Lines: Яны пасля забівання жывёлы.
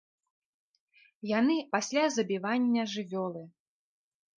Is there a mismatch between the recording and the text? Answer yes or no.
no